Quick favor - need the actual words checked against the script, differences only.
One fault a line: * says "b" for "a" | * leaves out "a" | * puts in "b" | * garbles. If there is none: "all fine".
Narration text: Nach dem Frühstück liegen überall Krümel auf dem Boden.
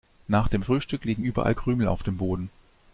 all fine